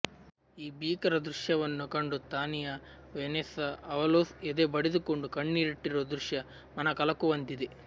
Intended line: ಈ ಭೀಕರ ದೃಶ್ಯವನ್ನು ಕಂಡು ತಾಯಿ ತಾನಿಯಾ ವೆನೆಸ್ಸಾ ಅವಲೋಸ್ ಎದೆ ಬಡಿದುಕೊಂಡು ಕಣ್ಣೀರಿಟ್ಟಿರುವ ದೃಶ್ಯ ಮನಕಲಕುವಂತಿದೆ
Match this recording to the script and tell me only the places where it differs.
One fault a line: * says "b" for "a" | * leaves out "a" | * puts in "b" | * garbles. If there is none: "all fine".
* leaves out "ತಾಯಿ"